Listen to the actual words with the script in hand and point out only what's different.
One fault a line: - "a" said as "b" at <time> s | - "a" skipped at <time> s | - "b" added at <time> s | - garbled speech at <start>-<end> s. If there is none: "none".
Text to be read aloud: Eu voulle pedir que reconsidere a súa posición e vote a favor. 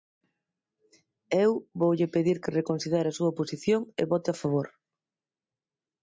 none